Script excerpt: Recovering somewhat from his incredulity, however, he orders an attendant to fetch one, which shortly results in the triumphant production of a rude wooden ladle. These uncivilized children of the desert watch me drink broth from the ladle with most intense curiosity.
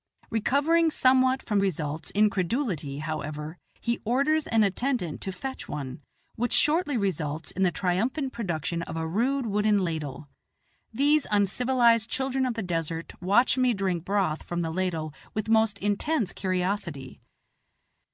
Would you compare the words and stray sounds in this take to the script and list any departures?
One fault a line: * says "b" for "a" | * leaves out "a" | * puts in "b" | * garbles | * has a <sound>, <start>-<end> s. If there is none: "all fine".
* says "results" for "his"